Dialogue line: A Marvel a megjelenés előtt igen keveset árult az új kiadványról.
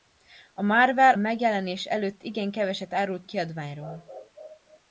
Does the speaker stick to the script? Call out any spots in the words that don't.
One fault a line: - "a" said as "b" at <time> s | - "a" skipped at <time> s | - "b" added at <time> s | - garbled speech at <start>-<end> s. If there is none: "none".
- "a" skipped at 1.1 s
- "az új" skipped at 3.3 s